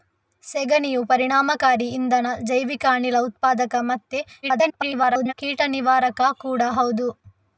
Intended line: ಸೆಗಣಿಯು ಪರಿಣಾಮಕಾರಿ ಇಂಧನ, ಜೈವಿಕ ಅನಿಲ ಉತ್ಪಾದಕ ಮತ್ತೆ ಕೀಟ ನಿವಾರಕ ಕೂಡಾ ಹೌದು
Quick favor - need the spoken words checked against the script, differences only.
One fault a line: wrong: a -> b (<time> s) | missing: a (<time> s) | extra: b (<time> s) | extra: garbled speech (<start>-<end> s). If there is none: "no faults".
extra: garbled speech (4.4-5.3 s)